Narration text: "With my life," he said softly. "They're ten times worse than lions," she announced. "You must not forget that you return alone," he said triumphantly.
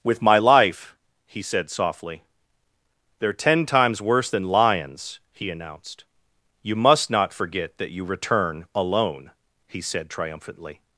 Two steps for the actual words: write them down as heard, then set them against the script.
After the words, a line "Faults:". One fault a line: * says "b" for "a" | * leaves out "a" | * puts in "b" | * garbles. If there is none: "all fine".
"With my life," he said softly. "They're ten times worse than lions," he announced. "You must not forget that you return alone," he said triumphantly.
Faults:
* says "he" for "she"